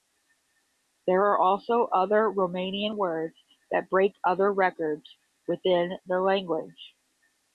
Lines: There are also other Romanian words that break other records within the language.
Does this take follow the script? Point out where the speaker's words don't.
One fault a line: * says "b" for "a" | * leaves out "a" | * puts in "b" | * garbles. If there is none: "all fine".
all fine